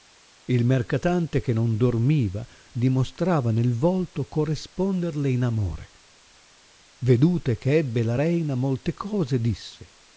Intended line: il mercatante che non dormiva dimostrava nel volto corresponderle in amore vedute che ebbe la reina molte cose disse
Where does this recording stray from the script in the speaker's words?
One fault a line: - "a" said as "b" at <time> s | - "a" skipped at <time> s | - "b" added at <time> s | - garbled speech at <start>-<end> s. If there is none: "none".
none